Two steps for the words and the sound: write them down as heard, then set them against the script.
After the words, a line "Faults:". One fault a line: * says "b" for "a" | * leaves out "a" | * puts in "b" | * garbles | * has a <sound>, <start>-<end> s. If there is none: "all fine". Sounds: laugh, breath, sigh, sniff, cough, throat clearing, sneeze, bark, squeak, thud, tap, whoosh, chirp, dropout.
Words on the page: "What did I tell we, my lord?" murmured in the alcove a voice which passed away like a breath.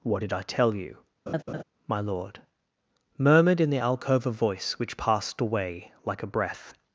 "What did I tell you, my lord?" murmured in the alcove a voice which passed away like a breath.
Faults:
* says "you" for "we"
* has a laugh, 1.3-1.6 s